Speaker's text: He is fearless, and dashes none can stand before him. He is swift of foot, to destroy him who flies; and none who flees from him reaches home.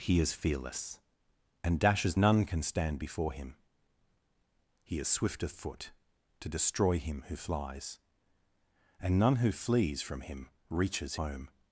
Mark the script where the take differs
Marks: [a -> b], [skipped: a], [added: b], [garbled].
He is fearless, and dashes none can stand before him. He is swift of foot, to destroy him who flies; and none who flees from him reaches home.